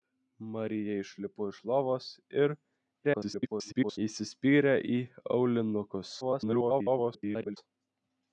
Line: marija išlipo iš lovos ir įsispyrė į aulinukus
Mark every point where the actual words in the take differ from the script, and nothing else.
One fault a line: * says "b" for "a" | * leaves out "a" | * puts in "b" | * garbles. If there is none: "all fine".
* garbles
* garbles